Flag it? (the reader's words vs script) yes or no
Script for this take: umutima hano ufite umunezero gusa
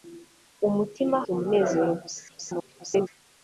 yes